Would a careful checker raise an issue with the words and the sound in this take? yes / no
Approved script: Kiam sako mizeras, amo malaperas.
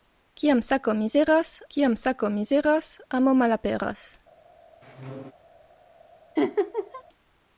yes